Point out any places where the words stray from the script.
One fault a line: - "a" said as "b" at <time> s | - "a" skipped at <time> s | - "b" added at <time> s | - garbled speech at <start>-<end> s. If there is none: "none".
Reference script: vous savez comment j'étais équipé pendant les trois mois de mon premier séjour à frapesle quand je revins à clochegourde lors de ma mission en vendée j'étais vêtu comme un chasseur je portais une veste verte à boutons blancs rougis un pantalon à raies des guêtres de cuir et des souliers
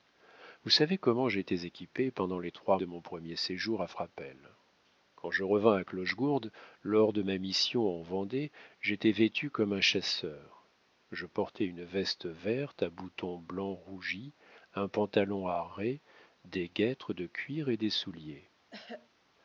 - "mois" skipped at 2.8 s